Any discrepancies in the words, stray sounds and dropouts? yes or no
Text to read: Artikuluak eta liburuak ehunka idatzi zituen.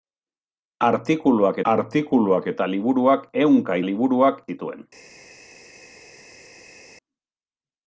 yes